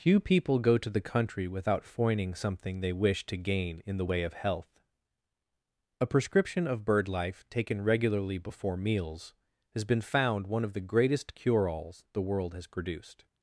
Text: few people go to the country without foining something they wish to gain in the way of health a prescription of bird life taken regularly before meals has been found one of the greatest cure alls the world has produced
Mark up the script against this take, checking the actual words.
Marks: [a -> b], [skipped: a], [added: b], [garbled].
few people go to the country without foining something they wish to gain in the way of health a prescription of bird life taken regularly before meals has been found one of the greatest cure alls the world has produced